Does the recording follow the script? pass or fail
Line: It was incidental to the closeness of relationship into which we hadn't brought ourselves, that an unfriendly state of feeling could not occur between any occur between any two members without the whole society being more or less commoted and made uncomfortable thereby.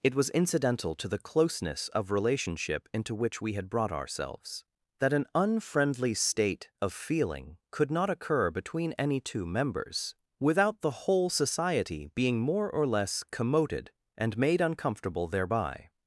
fail